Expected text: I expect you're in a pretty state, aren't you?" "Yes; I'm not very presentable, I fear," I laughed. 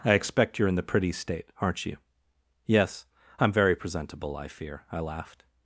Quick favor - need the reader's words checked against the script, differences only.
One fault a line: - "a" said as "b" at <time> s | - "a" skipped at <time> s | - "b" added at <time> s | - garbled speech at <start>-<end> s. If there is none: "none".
- "a" said as "the" at 0.8 s
- "not" skipped at 3.5 s